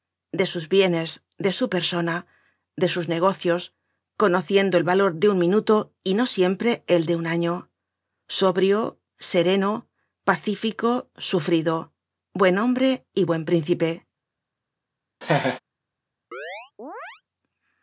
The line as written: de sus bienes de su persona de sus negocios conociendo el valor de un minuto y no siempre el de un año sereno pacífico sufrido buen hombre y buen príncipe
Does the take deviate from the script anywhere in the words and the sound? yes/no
yes